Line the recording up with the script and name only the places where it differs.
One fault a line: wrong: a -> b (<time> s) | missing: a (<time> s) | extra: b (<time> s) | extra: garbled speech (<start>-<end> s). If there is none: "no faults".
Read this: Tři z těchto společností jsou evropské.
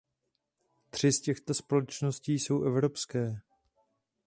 no faults